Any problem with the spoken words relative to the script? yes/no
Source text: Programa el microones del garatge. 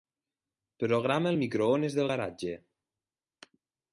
no